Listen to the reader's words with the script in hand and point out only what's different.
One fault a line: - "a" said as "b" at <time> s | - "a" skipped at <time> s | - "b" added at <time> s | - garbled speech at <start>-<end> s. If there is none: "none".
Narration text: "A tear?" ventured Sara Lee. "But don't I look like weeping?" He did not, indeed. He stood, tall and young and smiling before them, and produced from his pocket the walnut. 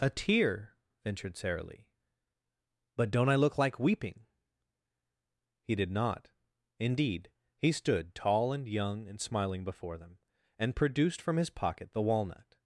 none